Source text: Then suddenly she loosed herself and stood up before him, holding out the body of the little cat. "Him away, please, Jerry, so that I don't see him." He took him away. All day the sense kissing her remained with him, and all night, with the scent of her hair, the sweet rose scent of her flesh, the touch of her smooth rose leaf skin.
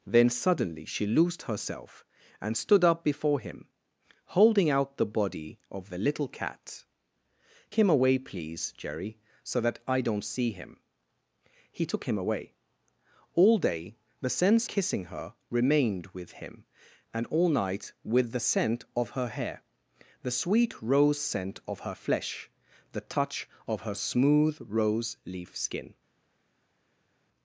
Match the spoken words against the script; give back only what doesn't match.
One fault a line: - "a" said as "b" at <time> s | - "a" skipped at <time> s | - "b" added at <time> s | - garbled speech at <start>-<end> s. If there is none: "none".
none